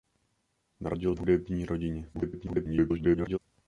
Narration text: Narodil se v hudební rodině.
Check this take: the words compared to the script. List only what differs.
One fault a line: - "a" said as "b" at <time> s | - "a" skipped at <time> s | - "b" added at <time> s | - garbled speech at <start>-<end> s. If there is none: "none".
- "se" skipped at 1.1 s
- garbled speech at 2.1-3.4 s